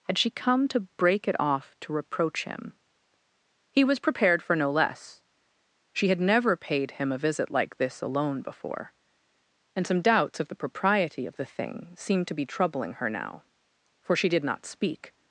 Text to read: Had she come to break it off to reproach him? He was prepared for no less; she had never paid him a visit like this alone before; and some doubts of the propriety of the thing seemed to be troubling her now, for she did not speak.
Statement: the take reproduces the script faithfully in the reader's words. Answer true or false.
true